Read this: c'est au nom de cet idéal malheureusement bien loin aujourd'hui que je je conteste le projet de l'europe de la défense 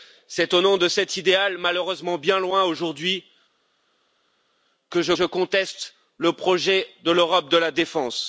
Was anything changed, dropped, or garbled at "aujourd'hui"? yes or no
no